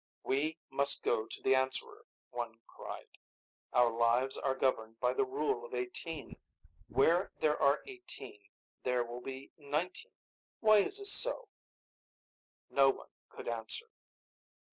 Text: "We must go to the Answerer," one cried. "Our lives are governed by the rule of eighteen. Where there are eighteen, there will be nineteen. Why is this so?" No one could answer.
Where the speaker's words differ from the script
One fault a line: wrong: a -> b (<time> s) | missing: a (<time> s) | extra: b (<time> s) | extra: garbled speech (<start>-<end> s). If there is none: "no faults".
no faults